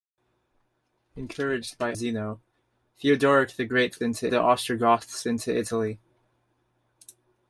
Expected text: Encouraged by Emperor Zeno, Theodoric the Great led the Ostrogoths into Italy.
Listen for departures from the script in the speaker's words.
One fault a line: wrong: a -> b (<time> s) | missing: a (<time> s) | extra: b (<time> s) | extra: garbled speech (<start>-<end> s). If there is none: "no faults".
missing: Emperor (1.9 s)
wrong: led -> into (4.0 s)